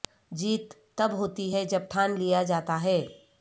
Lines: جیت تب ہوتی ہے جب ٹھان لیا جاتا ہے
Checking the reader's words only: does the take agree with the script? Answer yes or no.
yes